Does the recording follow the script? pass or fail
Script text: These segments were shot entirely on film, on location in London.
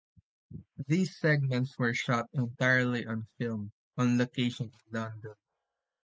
pass